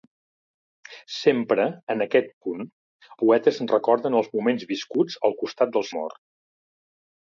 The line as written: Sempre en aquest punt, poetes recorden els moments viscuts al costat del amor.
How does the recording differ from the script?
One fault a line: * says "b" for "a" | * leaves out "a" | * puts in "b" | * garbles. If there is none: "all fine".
all fine